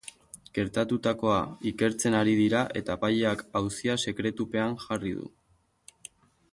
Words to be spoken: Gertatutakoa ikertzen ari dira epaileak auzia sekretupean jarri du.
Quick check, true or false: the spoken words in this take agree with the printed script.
false